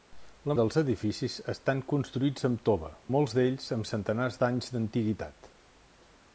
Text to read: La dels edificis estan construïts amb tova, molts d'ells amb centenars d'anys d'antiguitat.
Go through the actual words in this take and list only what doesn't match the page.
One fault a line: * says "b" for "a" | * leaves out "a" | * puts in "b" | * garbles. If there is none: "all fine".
all fine